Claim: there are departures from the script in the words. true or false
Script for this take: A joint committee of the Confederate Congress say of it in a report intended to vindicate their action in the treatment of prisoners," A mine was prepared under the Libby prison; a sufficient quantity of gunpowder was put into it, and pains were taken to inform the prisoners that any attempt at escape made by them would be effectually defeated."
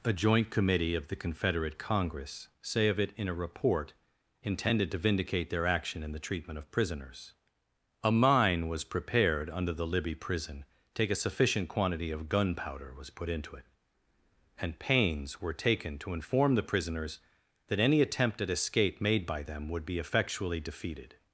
true